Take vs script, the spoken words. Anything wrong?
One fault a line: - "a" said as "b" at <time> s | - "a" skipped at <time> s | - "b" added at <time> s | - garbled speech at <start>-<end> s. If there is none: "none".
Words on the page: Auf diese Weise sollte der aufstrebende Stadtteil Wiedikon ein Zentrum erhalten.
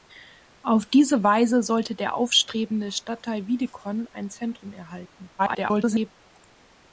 - garbled speech at 5.4-6.1 s